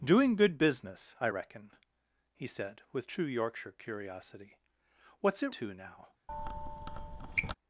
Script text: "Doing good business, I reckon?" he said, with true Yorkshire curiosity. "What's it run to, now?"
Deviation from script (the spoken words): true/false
true